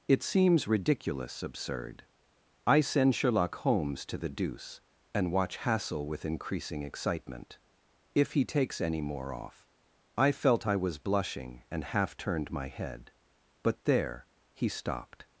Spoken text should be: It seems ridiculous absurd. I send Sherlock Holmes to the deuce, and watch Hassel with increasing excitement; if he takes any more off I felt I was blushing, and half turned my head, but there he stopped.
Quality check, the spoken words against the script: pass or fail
pass